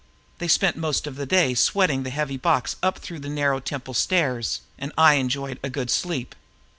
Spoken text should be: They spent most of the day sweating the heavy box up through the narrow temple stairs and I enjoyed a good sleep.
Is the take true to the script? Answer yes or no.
yes